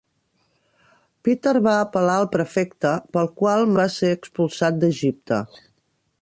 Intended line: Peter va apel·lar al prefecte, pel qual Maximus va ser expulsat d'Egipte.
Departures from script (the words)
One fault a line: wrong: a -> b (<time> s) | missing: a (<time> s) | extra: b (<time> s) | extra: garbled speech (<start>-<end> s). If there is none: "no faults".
missing: Maximus (3.7 s)